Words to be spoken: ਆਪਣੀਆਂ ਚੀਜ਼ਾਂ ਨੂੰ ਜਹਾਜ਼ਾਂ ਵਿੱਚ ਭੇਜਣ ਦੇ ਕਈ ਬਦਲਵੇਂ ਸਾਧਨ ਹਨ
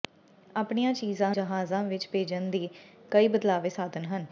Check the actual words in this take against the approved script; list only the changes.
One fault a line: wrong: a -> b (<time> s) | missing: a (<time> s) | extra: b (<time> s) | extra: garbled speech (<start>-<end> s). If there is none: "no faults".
missing: ਨੂੰ (1.4 s)